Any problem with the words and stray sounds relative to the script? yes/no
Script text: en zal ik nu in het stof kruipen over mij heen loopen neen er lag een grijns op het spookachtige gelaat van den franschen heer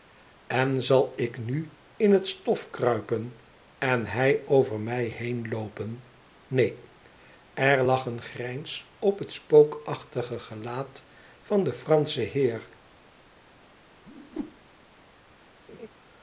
yes